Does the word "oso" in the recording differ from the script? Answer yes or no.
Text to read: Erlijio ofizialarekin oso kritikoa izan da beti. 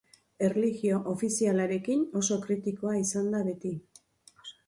no